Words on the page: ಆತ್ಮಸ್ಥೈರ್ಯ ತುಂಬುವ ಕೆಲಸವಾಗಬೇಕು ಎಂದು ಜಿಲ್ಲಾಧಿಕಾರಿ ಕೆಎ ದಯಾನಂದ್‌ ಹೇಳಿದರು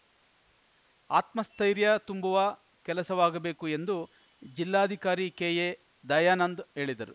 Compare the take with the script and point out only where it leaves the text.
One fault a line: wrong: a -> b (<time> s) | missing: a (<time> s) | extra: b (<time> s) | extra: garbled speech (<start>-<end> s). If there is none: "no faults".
no faults